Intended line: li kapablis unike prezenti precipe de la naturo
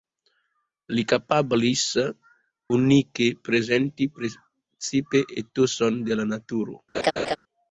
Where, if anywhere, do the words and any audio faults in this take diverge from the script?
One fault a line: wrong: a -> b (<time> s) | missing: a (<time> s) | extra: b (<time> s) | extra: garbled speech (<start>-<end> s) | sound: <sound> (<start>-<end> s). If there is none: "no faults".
extra: etoson (5.4 s)
sound: laugh (6.9-7.4 s)